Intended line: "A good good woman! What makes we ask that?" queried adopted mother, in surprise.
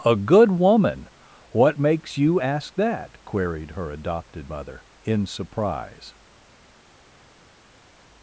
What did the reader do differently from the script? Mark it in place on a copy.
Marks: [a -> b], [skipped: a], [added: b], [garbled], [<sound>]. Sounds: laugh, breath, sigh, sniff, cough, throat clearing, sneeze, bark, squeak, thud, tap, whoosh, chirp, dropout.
"A good [skipped: good] woman! What makes [we -> you] ask that?" queried [added: her] adopted mother, in surprise.